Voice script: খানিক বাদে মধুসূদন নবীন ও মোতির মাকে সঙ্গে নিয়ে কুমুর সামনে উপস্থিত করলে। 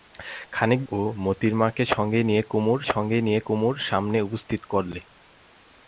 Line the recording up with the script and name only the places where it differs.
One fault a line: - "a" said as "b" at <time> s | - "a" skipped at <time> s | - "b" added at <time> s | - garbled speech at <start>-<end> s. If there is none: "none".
- "বাদে মধুসূদন নবীন ও মোতির মাকে" said as "ও মোতির মাকে সঙ্গে নিয়ে কুমুর" at 0.9 s